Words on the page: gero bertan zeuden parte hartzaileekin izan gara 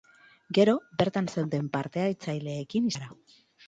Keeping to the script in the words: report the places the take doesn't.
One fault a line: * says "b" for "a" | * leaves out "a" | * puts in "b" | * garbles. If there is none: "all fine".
* leaves out "izan"